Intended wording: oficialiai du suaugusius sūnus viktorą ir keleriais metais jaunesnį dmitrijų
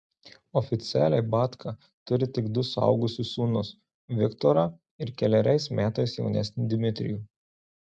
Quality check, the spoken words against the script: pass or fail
fail